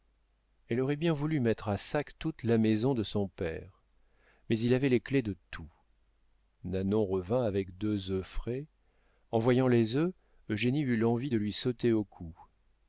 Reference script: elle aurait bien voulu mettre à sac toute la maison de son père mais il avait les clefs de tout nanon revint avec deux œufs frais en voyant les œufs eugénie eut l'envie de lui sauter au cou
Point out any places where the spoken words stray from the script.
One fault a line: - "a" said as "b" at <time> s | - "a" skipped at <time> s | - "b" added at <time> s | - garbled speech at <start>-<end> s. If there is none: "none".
none